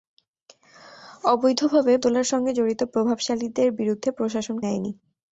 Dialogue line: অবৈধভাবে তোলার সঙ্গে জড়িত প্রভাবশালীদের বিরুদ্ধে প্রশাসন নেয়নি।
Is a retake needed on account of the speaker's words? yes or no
no